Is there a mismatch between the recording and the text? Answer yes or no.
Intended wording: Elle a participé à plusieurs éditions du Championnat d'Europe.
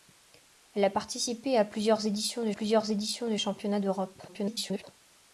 yes